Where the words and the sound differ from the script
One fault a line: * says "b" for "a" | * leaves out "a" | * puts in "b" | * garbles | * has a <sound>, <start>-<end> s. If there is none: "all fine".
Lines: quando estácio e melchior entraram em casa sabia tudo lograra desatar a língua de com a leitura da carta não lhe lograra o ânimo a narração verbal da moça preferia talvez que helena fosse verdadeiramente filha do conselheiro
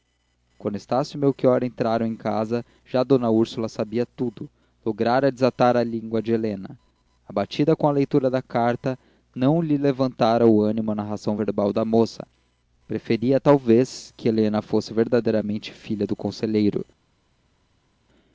* puts in "já d úrsula"
* puts in "helena abatida"
* says "levantara" for "lograra"